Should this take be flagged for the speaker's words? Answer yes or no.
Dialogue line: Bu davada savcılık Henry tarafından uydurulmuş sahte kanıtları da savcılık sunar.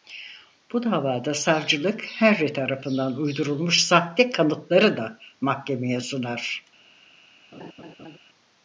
yes